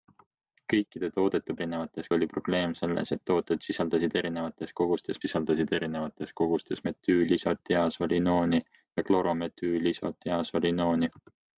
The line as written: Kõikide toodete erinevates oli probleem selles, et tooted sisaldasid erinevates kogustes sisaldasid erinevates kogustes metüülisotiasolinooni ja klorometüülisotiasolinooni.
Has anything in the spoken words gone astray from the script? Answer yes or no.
no